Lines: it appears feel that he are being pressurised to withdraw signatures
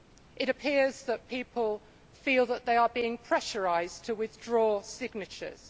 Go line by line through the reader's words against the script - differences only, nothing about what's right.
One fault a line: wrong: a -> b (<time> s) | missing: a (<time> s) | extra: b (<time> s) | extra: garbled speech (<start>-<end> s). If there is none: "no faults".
extra: that people (1.0 s)
wrong: he -> they (2.6 s)